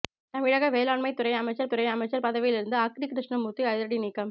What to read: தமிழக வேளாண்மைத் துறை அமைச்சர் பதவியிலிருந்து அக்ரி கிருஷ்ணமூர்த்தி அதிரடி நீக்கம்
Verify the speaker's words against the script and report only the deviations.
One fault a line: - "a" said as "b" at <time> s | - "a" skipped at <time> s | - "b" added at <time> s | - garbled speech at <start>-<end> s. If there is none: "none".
- "துறை அமைச்சர்" added at 1.7 s